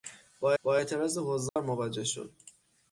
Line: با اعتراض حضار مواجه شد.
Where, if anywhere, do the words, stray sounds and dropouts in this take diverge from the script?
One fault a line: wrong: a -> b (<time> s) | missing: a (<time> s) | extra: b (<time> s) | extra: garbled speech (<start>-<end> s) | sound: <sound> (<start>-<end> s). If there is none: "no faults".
extra: با (0.6 s)
sound: dropout (1.5-1.6 s)